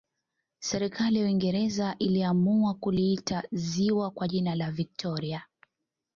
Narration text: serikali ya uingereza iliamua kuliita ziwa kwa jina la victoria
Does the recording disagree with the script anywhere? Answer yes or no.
no